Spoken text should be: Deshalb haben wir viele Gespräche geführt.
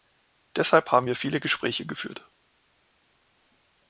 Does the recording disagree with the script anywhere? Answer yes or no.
no